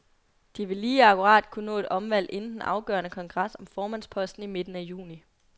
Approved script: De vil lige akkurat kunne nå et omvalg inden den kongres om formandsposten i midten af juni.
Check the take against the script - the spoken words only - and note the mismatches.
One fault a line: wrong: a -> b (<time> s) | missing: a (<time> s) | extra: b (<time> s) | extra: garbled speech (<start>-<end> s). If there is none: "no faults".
extra: afgørende (2.6 s)